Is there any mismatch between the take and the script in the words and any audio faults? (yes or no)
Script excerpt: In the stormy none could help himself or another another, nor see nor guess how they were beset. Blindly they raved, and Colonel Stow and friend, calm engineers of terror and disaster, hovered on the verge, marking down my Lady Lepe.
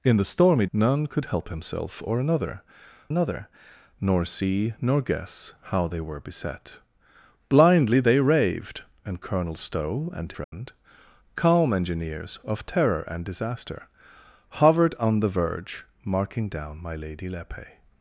yes